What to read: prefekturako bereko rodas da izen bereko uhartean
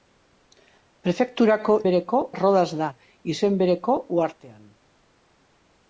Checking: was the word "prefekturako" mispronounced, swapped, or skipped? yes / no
no